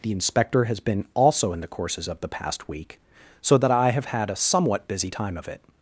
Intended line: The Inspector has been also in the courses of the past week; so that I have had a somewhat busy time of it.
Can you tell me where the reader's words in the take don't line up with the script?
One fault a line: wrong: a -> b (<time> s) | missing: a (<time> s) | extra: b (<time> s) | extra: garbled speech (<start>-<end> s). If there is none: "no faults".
no faults